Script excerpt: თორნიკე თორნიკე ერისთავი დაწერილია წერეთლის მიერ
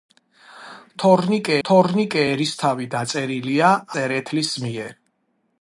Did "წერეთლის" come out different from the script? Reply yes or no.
no